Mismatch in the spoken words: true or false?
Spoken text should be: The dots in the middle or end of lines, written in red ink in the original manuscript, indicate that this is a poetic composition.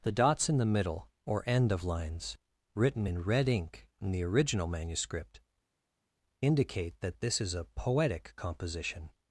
false